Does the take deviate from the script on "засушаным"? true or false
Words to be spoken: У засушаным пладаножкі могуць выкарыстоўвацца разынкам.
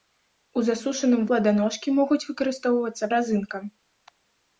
false